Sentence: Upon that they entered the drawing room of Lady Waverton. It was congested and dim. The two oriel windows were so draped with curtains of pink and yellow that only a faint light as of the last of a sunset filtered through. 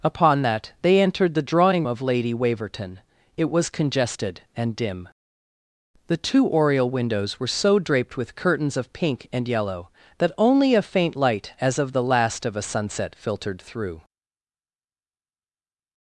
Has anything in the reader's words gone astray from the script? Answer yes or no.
yes